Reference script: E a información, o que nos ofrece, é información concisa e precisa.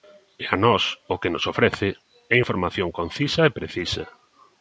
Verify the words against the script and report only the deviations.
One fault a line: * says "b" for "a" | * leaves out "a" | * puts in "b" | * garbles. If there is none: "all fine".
* says "nós" for "información"